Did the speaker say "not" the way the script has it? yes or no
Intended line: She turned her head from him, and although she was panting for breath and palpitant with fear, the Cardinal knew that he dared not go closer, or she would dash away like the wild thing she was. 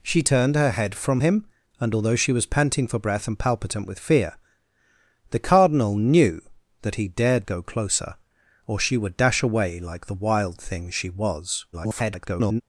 no